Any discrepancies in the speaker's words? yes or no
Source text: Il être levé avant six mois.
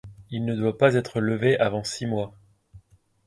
yes